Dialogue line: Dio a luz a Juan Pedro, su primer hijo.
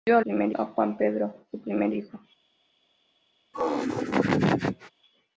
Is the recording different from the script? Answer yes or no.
yes